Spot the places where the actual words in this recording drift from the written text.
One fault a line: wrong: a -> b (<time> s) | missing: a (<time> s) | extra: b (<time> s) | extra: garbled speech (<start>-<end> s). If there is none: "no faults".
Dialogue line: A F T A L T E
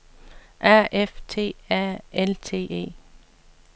no faults